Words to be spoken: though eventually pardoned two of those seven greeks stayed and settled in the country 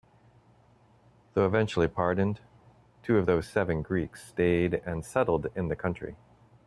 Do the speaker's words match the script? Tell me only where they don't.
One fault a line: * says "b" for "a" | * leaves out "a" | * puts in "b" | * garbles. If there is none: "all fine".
all fine